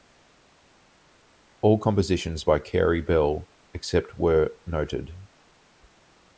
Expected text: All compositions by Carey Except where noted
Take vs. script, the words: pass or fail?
fail